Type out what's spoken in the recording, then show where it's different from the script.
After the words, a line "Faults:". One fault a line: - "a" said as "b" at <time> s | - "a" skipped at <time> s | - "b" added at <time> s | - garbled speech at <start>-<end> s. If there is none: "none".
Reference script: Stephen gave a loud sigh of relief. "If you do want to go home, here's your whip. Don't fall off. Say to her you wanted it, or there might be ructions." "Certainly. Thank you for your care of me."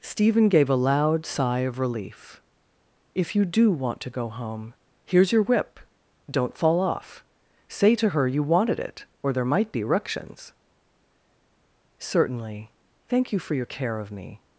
Stephen gave a loud sigh of relief. "If you do want to go home, here's your whip. Don't fall off. Say to her you wanted it, or there might be ructions." "Certainly. Thank you for your care of me."
Faults:
none